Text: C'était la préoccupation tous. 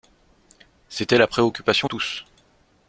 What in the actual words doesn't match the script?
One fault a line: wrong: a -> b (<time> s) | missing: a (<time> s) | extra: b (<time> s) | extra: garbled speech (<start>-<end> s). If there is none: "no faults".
no faults